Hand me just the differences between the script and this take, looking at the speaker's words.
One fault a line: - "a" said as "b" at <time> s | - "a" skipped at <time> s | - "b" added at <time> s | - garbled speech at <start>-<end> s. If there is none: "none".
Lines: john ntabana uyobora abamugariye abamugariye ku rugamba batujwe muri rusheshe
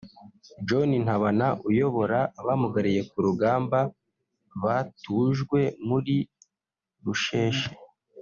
- "abamugariye" skipped at 3.0 s